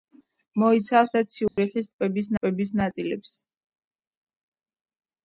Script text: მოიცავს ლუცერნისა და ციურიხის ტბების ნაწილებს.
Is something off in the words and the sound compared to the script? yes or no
yes